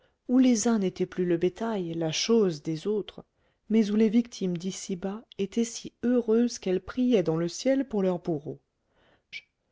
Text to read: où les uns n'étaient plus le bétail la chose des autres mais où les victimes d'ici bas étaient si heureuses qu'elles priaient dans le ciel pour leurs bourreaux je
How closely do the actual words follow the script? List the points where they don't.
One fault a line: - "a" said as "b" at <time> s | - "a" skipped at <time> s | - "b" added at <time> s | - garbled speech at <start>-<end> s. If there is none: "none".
none